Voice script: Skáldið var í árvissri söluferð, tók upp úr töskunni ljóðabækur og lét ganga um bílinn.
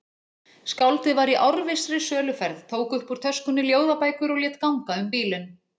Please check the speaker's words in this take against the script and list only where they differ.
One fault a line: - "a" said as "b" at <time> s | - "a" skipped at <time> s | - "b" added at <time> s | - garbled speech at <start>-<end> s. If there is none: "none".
none